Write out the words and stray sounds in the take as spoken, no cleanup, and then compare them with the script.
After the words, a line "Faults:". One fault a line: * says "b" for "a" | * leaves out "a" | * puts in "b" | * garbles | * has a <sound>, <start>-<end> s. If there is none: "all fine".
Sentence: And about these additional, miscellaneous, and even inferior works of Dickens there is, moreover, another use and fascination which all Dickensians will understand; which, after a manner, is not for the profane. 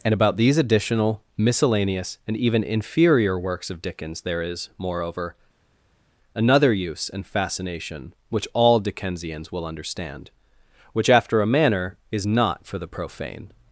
And about these additional, miscellaneous, and even inferior works of Dickens there is, moreover, another use and fascination which all Dickensians will understand; which, after a manner, is not for the profane.
Faults:
all fine